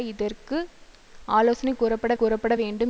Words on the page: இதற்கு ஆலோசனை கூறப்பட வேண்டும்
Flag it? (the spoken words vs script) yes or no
yes